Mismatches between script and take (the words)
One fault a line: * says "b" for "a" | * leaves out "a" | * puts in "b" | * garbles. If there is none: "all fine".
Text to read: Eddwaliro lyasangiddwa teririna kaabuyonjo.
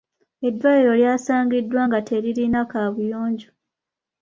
* puts in "nga"